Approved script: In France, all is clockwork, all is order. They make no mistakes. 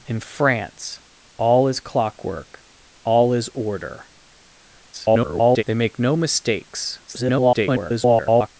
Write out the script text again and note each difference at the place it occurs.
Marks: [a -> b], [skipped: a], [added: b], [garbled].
In France, all is clockwork, all is order. [garbled] They make no mistakes. [garbled]